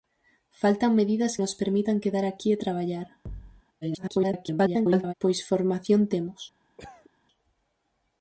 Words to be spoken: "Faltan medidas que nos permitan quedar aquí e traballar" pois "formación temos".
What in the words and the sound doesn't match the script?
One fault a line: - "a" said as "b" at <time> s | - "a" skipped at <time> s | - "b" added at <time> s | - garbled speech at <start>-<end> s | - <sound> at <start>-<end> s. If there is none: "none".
- "que" skipped at 1.3 s
- thud at 3.3-3.6 s
- garbled speech at 3.8-5.1 s
- cough at 6.8-7.1 s